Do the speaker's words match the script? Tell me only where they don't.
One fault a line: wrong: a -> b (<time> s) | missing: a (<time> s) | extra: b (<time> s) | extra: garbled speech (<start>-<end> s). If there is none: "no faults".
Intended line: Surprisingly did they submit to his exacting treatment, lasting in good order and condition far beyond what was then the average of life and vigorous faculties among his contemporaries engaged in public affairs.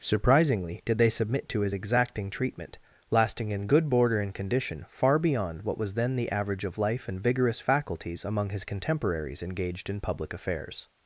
wrong: order -> border (3.9 s)